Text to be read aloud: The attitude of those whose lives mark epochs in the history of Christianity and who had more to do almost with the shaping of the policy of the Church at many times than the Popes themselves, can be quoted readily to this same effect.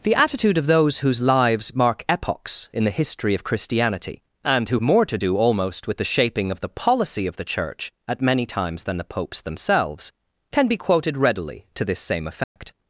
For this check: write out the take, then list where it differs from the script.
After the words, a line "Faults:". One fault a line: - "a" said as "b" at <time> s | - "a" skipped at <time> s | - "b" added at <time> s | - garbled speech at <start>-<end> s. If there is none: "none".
The attitude of those whose lives mark epochs in the history of Christianity and who more to do almost with the shaping of the policy of the Church at many times than the Popes themselves, can be quoted readily to this same effect.
Faults:
- "had" skipped at 4.8 s